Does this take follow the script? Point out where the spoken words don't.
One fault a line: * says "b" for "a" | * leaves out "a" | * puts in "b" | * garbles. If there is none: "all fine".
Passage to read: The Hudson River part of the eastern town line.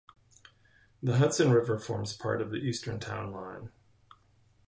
* puts in "forms"